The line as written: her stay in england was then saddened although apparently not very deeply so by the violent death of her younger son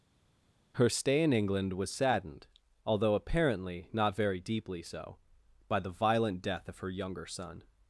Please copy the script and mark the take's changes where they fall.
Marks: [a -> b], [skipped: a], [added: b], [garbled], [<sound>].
her stay in england was [skipped: then] saddened although apparently not very deeply so by the violent death of her younger son